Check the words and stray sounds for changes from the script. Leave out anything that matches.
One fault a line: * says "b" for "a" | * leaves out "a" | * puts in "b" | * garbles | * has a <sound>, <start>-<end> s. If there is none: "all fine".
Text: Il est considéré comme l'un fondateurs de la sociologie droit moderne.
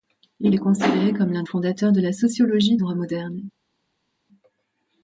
all fine